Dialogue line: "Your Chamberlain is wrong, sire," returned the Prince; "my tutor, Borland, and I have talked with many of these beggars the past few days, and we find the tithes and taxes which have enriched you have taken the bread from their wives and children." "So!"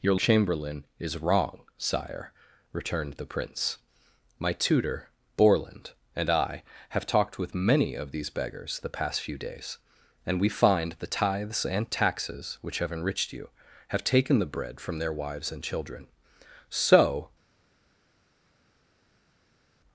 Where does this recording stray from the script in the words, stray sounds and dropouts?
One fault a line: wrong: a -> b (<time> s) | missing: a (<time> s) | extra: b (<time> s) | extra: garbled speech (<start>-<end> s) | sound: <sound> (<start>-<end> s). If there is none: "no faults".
no faults